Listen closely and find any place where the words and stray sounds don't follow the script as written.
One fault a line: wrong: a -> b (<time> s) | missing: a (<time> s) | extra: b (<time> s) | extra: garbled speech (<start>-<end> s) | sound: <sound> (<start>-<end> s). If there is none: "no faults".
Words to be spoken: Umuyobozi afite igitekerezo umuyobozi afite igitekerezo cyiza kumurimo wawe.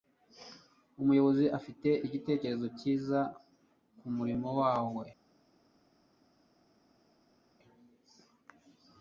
missing: umuyobozi afite igitekerezo (2.7 s)